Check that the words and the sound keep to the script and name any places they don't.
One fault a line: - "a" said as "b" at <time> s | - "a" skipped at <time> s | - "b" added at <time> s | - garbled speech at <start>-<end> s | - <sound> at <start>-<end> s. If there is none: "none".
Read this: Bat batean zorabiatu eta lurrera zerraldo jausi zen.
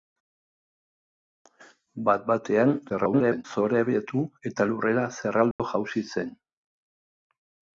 - garbled speech at 2.9-3.4 s
- dropout at 5.5-5.6 s